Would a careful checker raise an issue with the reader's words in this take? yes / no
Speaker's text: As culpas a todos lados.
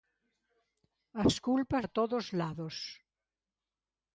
no